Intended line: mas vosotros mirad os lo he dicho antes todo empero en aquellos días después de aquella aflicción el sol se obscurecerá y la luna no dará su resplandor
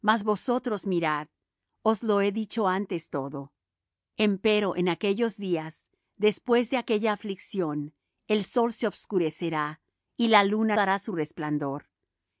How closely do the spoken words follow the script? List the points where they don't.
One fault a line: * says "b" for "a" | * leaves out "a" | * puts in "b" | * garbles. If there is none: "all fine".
* leaves out "no"